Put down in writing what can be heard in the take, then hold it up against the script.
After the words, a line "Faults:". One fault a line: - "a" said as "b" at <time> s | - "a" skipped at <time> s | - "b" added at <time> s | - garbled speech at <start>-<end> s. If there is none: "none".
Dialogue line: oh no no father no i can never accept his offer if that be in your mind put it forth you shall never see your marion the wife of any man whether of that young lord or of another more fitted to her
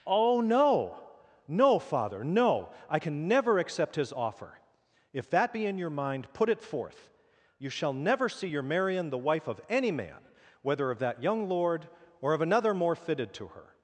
oh no no father no i can never accept his offer if that be in your mind put it forth you shall never see your marion the wife of any man whether of that young lord or of another more fitted to her
Faults:
none